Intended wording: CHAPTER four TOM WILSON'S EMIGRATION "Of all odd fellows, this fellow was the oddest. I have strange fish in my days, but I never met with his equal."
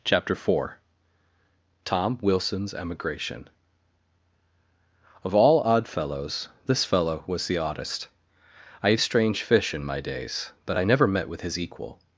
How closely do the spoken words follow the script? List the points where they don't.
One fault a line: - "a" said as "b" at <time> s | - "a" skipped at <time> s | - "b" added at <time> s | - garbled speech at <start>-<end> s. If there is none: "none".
none